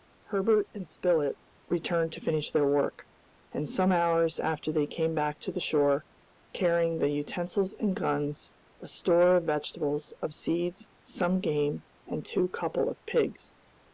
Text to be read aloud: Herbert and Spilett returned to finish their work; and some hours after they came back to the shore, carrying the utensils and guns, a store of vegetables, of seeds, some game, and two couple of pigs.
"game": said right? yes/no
yes